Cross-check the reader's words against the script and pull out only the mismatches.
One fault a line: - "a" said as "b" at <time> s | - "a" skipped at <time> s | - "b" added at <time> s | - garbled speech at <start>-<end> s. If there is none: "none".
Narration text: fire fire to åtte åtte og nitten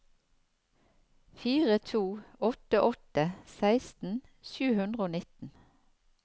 - "fire" skipped at 1.8 s
- "seksten sju hundre" added at 3.6 s